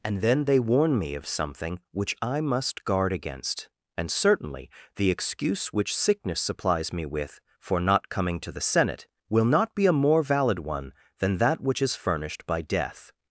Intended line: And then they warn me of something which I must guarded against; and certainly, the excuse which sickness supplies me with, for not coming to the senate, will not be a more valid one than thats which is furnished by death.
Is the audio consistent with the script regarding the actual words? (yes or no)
no